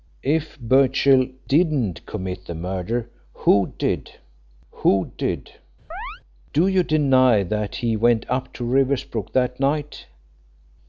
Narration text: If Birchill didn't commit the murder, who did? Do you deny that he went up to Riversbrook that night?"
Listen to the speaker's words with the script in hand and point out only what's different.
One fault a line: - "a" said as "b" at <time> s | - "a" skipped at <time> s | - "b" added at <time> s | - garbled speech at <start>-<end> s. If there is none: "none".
- "who did" added at 4.7 s